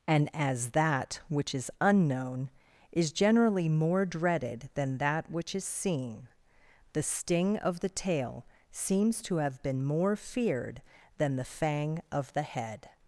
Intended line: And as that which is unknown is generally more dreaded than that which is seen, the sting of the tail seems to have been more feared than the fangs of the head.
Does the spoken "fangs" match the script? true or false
false